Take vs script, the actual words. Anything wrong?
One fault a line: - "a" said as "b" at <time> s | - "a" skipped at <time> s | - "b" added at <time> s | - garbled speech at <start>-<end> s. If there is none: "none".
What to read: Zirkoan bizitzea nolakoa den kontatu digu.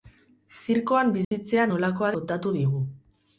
- "den" skipped at 2.1 s